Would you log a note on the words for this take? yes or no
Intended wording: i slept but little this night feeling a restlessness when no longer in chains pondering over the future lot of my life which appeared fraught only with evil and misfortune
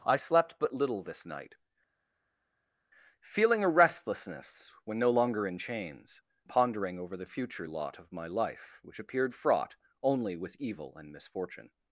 no